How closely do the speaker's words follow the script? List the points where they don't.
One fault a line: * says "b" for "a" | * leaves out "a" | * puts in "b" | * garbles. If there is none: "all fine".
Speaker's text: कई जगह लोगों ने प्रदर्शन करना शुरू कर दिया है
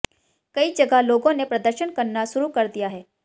all fine